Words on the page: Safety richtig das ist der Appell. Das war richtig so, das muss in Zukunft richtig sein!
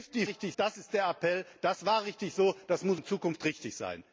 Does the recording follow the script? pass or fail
pass